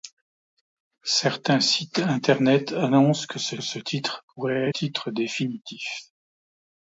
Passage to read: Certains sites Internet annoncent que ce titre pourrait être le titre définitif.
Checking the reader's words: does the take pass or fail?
fail